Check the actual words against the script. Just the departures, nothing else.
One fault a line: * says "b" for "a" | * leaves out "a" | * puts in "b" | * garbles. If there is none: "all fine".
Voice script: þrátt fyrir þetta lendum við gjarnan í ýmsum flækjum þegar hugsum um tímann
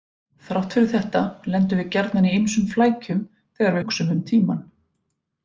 all fine